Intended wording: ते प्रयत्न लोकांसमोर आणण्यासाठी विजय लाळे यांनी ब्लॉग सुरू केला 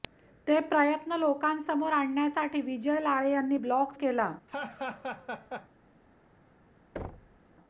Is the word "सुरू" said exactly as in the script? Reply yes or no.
no